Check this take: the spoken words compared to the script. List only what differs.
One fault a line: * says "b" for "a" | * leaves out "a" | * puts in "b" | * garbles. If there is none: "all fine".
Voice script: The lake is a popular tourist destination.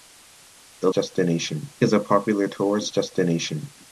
* says "destination" for "lake"